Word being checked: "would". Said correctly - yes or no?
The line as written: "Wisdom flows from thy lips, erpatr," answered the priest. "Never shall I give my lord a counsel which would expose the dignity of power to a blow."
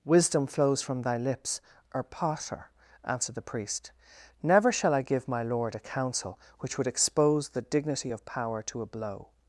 yes